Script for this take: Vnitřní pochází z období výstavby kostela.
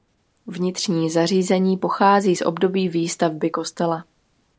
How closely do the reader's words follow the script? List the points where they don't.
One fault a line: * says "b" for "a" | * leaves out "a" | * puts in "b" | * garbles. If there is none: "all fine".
* puts in "zařízení"